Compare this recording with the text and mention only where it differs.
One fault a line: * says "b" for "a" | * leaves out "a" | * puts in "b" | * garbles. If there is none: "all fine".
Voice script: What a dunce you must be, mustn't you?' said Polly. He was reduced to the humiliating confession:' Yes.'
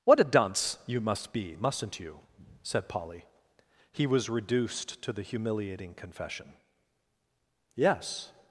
all fine